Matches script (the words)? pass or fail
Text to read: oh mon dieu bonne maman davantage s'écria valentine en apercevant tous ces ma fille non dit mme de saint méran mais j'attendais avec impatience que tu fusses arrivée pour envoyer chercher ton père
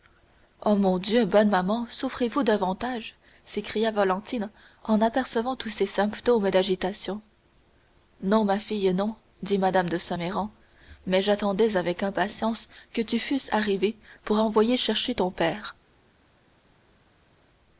fail